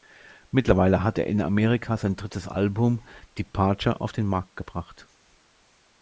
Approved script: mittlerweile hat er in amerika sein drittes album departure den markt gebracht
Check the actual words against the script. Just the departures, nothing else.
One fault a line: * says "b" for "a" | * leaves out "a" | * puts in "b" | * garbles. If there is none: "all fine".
* puts in "auf"